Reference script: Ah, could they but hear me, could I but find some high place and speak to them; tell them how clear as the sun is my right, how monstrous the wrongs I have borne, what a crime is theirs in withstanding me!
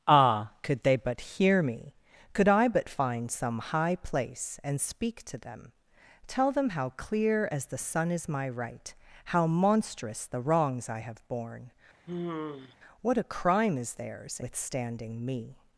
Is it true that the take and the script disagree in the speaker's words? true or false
true